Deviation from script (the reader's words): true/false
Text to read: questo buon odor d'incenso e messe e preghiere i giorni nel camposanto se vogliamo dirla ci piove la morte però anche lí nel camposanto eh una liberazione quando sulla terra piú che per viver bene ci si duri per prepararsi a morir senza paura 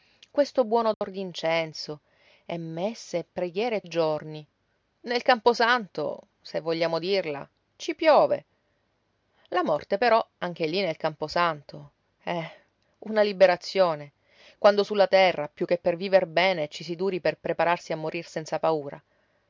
false